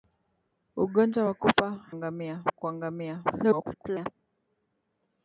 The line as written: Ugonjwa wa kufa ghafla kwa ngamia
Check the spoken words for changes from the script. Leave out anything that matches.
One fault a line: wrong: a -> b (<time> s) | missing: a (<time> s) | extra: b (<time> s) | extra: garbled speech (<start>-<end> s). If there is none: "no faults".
wrong: ghafla -> ngamia (1.9 s)
extra: garbled speech (3.3-4.1 s)